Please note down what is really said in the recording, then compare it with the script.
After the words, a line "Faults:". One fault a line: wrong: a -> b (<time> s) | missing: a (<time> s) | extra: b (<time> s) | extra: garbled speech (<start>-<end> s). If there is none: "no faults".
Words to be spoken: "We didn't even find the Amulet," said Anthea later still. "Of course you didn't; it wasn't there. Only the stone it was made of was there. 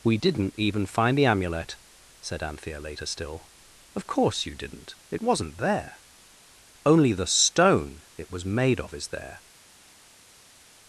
"We didn't even find the Amulet," said Anthea later still. "Of course you didn't; it wasn't there. Only the stone it was made of is there.
Faults:
wrong: was -> is (8.9 s)